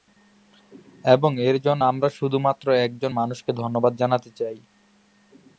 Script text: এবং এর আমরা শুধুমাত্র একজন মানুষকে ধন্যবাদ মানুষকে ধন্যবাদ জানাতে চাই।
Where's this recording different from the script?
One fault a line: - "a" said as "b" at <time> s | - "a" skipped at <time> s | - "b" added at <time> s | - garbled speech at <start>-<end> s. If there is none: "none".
- "জন্য" added at 1.6 s
- "মানুষকে ধন্যবাদ" skipped at 3.9 s